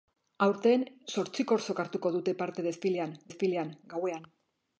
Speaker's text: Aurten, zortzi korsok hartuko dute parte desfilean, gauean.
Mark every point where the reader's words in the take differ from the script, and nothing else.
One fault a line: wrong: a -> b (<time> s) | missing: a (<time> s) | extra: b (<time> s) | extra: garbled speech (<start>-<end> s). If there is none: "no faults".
extra: desfilean (3.3 s)